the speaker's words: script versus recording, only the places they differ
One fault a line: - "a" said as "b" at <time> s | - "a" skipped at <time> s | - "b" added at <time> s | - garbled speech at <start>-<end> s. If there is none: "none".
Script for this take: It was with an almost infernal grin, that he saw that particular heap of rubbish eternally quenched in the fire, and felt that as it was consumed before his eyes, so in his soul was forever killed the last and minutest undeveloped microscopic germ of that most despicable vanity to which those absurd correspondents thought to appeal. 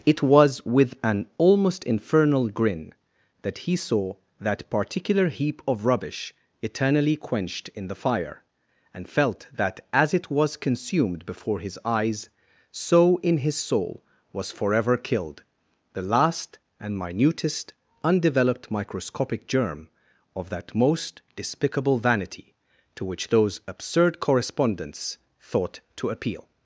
none